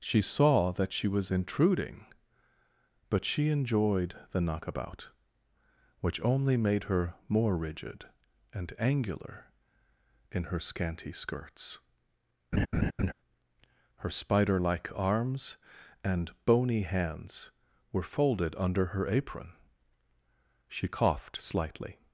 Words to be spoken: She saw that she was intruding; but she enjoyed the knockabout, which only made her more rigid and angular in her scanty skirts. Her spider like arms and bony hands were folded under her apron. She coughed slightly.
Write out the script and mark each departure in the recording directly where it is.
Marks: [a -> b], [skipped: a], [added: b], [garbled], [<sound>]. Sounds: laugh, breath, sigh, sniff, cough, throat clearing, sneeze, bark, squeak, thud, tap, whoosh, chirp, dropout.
She saw that she was intruding; but she enjoyed the knockabout, which only made her more rigid and angular in her scanty skirts. [laugh] Her spider like arms and bony hands were folded under her apron. She coughed slightly.